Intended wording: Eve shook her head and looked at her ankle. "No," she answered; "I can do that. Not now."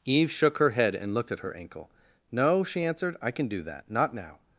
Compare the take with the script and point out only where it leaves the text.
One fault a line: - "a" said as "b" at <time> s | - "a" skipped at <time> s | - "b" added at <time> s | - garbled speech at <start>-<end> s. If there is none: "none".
none